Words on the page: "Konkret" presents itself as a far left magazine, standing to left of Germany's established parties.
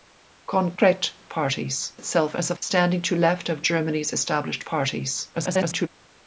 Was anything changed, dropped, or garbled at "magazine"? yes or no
yes